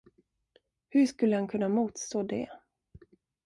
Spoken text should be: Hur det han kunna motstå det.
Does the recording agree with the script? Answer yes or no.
no